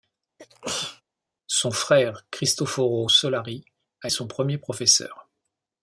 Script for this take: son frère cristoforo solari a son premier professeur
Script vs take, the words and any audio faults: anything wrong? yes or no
yes